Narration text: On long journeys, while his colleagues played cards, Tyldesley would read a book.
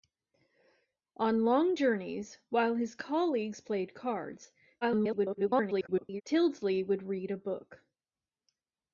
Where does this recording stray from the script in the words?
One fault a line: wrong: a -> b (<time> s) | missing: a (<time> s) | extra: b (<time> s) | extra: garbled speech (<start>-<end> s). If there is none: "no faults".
extra: garbled speech (4.8-6.2 s)